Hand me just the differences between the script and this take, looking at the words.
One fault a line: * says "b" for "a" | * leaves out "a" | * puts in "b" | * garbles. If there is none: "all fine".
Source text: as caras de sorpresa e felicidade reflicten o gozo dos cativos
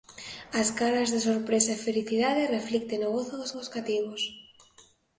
* puts in "dos"